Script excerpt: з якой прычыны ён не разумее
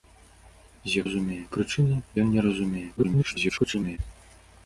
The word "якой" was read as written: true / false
false